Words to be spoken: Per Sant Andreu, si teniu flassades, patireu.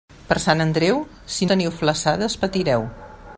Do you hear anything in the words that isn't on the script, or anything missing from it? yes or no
no